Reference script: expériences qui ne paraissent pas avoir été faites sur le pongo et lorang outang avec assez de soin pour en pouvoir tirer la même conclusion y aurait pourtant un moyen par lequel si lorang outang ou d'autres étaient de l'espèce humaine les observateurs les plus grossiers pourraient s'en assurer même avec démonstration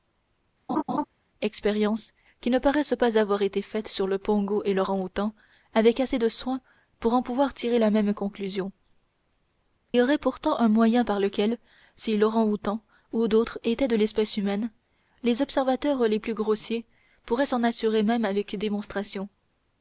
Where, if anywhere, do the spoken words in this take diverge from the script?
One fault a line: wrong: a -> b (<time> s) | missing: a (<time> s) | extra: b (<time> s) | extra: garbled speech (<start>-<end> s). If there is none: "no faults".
no faults